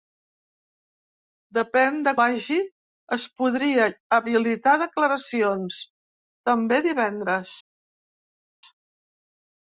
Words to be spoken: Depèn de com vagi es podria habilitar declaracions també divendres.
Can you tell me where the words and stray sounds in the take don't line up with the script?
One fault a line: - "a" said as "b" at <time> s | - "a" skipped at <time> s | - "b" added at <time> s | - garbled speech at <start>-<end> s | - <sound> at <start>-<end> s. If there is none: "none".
- "com" skipped at 2.1 s